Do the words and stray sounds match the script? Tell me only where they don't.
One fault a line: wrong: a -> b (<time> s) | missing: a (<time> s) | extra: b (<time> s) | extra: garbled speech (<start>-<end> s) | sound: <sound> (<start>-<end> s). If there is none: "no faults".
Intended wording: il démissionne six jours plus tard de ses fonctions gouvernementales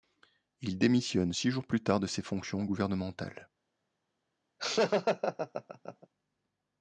sound: laugh (4.6-6.1 s)